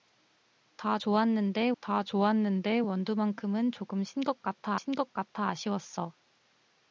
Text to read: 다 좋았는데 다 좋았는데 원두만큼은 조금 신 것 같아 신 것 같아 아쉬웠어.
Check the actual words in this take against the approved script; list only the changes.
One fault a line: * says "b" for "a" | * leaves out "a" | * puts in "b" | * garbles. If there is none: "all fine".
all fine